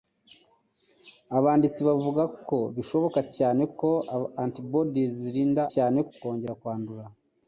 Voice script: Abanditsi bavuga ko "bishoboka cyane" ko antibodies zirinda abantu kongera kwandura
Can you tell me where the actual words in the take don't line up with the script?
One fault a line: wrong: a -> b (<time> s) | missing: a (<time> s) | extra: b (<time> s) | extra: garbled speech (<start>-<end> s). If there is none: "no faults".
wrong: abantu -> cyane (5.7 s)